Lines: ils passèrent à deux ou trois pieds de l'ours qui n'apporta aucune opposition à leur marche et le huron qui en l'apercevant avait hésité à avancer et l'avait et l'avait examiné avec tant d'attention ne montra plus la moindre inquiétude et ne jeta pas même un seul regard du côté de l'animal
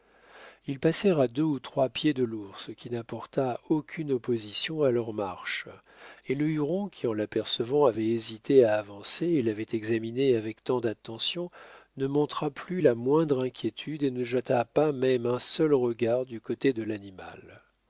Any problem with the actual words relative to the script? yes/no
yes